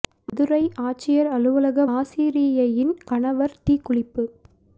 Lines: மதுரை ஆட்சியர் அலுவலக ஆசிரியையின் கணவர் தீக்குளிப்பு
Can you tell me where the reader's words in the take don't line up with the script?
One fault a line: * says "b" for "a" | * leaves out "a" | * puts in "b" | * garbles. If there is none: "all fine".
all fine